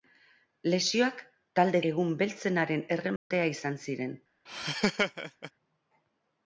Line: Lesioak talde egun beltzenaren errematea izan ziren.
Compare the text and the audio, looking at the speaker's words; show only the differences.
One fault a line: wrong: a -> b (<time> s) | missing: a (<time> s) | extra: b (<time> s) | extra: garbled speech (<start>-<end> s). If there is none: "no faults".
no faults